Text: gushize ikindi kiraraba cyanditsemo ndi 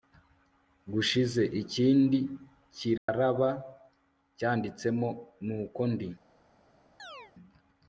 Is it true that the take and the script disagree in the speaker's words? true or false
true